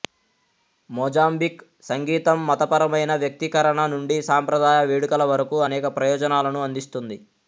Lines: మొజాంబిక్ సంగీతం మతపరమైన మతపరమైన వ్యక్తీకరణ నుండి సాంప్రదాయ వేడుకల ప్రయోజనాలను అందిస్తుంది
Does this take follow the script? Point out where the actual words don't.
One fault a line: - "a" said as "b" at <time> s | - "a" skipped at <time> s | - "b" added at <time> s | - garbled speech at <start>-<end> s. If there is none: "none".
- "మతపరమైన" skipped at 3.1 s
- "వరకు అనేక" added at 5.3 s